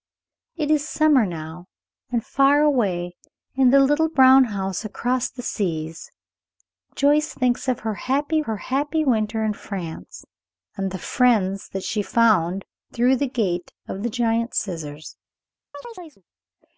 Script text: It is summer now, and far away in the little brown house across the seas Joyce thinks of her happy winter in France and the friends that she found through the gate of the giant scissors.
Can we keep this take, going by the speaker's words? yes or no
no